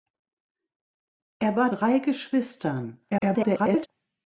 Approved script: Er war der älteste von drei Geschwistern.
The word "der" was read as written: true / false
false